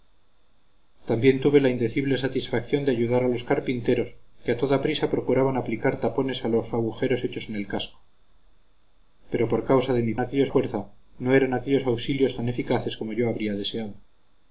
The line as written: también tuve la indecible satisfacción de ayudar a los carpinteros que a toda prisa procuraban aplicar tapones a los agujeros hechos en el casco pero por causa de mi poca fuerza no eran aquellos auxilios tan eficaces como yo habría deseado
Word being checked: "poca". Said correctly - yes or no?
no